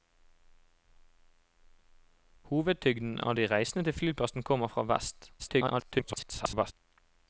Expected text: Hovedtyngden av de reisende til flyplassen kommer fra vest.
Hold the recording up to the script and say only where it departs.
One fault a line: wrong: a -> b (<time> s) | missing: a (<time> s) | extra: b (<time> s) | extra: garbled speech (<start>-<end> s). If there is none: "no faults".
extra: garbled speech (5.4-6.7 s)